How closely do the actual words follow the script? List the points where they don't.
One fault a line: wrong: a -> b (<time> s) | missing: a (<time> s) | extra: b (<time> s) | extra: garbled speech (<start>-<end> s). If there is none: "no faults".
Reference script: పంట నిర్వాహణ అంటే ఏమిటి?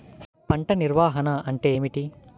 no faults